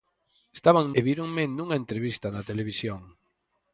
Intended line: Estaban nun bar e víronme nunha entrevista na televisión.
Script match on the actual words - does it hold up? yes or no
no